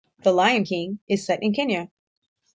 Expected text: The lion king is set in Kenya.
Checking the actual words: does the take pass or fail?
pass